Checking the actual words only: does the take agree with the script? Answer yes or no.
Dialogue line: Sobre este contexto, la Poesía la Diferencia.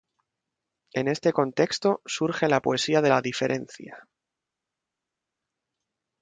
no